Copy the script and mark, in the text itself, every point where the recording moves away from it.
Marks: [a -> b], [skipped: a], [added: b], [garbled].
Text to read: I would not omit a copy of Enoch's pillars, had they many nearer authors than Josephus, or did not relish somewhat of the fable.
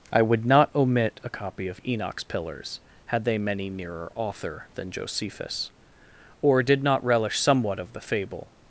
I would not omit a copy of Enoch's pillars, had they many nearer [authors -> author] than Josephus, or did not relish somewhat of the fable.